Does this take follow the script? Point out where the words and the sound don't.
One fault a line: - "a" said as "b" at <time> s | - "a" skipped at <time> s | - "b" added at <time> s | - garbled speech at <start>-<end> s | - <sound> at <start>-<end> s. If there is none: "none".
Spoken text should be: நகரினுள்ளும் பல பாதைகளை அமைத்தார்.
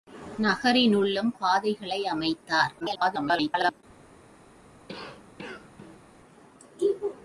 - "பல" skipped at 1.3 s
- garbled speech at 2.8-3.8 s
- cough at 4.9-6.0 s